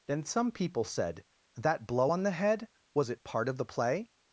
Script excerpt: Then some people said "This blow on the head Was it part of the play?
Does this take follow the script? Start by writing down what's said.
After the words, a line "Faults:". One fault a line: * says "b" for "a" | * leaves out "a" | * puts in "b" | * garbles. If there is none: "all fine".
Then some people said "That blow on the head Was it part of the play?
Faults:
* says "That" for "This"